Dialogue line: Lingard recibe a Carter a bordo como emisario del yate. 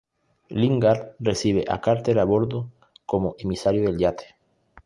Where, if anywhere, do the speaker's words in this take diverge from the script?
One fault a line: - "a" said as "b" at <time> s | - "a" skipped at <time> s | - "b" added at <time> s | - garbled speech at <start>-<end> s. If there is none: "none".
none